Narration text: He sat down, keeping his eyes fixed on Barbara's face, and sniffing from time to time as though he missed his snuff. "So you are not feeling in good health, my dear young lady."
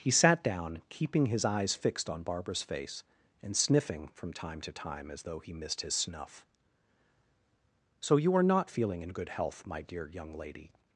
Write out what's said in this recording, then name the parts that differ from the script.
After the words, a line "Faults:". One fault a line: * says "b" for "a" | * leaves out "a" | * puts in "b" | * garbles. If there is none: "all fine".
He sat down, keeping his eyes fixed on Barbara's face, and sniffing from time to time as though he missed his snuff. "So you are not feeling in good health, my dear young lady."
Faults:
all fine